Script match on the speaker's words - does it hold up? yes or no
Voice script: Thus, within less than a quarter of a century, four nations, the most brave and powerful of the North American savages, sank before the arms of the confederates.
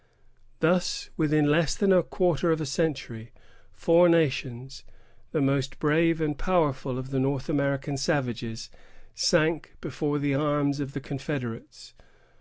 yes